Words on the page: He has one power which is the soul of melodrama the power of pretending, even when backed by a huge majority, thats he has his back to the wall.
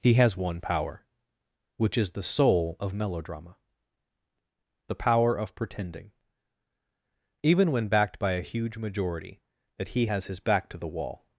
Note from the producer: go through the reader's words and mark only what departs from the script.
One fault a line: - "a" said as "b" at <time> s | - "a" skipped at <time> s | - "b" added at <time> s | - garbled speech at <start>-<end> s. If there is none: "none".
- "thats" said as "that" at 9.8 s